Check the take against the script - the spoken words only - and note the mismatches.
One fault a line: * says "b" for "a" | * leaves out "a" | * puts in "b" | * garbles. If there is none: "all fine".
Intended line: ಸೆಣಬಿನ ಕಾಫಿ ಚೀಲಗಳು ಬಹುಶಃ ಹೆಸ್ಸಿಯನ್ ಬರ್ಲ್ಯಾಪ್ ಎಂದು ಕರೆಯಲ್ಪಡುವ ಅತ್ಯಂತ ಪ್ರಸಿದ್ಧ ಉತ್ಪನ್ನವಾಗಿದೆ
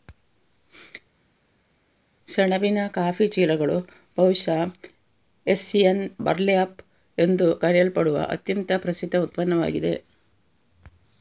all fine